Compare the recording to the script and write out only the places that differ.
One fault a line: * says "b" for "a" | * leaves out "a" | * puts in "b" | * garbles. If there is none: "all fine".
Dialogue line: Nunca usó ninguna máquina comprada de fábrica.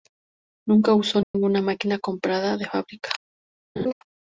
all fine